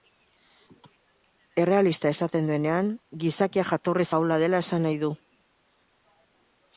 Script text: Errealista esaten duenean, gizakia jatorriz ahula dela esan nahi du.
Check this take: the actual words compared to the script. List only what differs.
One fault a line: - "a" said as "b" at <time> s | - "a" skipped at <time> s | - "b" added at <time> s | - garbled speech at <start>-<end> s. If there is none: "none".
none